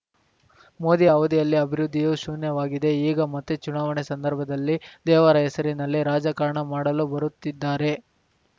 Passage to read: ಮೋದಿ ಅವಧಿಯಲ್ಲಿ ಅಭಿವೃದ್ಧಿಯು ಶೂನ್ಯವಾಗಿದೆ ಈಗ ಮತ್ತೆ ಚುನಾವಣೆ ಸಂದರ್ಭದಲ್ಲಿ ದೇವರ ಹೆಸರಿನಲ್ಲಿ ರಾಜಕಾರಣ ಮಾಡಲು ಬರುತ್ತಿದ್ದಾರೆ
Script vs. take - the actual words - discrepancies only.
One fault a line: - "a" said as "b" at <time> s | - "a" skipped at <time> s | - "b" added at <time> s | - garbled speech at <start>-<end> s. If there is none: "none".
none